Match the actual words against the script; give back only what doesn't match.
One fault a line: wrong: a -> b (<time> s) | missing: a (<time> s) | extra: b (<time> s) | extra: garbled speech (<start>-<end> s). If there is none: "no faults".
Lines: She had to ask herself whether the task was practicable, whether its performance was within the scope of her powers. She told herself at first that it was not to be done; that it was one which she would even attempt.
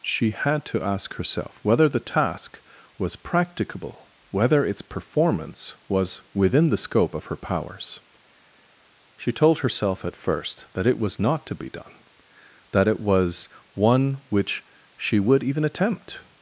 no faults